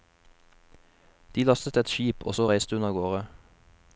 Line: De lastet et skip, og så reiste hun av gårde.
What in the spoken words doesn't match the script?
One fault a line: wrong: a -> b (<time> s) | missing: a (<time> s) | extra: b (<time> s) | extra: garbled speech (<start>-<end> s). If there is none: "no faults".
no faults